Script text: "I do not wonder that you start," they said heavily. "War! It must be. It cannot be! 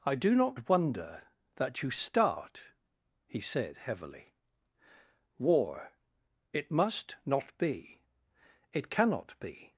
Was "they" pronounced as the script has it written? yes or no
no